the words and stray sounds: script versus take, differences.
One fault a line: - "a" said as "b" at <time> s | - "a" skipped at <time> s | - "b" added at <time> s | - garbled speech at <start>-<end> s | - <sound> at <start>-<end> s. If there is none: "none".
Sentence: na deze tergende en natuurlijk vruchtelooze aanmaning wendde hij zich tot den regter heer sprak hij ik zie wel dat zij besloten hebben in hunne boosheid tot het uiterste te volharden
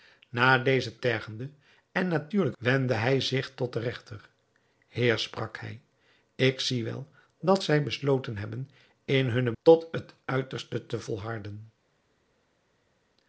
- "vruchtelooze aanmaning" skipped at 2.6 s
- "boosheid" skipped at 9.5 s